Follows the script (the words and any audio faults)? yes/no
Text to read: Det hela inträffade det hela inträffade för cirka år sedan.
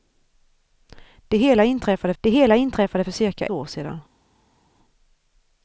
yes